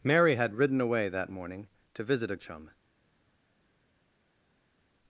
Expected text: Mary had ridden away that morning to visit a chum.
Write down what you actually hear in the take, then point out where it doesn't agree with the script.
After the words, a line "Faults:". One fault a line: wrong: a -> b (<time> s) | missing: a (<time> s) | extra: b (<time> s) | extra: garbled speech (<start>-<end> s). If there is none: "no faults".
Mary had ridden away that morning to visit a chum.
Faults:
no faults